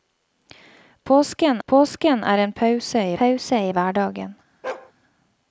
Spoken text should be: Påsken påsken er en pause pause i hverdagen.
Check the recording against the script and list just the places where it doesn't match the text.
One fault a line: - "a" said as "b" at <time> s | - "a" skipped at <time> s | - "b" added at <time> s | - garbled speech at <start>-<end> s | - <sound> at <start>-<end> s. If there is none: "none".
- bark at 4.6-4.9 s